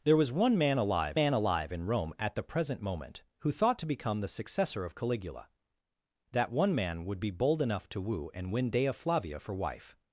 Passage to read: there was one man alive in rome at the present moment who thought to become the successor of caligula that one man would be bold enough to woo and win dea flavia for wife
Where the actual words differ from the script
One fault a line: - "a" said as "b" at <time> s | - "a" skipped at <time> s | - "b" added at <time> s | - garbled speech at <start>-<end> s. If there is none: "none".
- "man alive" added at 1.1 s